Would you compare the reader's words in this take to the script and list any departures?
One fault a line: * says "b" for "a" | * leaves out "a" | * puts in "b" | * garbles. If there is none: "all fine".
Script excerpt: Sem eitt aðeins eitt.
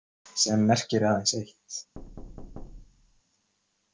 * says "merkir" for "eitt"